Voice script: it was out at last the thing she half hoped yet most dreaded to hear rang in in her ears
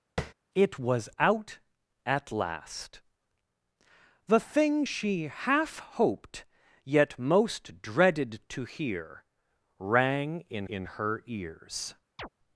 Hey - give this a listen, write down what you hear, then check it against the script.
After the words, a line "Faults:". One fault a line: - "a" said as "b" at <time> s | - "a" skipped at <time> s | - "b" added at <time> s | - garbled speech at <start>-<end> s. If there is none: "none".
it was out at last the thing she half hoped yet most dreaded to hear rang in in her ears
Faults:
none